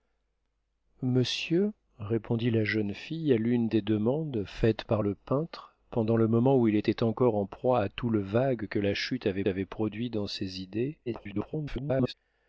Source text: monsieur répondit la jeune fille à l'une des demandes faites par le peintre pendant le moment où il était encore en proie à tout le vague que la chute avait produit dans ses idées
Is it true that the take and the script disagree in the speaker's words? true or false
true